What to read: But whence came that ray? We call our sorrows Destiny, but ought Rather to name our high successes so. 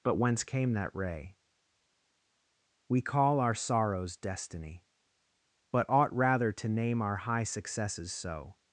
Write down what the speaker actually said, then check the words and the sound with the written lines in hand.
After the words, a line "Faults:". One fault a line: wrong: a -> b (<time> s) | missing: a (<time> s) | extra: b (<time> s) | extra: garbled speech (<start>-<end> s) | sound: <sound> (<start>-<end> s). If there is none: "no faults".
But whence came that ray? We call our sorrows Destiny, but ought Rather to name our high successes so.
Faults:
no faults